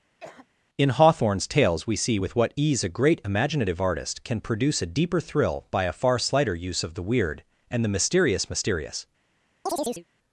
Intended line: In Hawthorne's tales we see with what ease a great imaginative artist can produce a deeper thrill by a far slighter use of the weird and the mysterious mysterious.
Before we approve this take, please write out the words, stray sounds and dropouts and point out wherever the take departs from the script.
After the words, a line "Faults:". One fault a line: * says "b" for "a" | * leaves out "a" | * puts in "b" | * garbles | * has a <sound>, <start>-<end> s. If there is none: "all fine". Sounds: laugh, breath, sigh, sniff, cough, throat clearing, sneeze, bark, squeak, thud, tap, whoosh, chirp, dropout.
In Hawthorne's tales we see with what ease a great imaginative artist can produce a deeper thrill by a far slighter use of the weird and the mysterious mysterious.
Faults:
* has a cough, 0.2-0.5 s
* has a chirp, 9.7-10.0 s